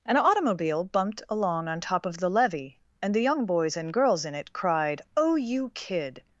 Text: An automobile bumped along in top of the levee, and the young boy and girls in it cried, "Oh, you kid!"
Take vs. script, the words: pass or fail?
fail